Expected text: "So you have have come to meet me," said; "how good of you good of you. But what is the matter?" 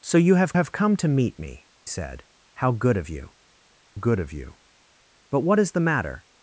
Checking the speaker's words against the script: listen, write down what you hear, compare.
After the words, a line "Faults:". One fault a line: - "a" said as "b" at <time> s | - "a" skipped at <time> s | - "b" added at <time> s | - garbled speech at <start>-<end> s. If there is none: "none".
"So you have have come to meet me," said; "how good of you good of you. But what is the matter?"
Faults:
none